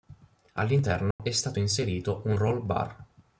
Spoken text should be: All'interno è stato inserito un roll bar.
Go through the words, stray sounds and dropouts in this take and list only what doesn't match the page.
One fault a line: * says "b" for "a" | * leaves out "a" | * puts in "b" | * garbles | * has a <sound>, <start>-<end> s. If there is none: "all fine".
* has a dropout, 1.1-1.2 s